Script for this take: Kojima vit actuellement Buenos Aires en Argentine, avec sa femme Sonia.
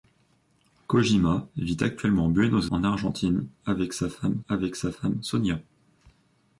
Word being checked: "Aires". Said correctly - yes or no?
no